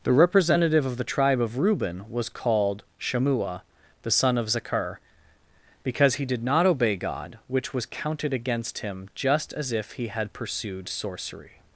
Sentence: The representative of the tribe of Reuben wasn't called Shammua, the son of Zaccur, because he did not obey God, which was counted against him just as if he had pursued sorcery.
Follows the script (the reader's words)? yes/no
no